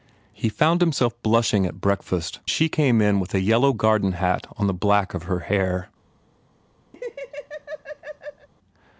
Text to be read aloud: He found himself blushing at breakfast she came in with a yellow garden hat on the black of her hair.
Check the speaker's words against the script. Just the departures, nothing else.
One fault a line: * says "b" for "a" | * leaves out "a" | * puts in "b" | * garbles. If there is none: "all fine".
all fine